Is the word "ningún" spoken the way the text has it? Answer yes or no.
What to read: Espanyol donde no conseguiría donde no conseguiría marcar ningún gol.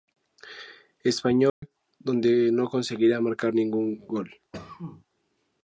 yes